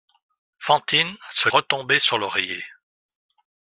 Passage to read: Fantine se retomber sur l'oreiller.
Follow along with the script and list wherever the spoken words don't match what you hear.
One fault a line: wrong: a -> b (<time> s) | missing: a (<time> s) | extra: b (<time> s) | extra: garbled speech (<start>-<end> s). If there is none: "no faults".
no faults